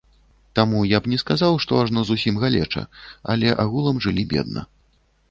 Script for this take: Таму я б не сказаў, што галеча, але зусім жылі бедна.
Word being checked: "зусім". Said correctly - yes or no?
no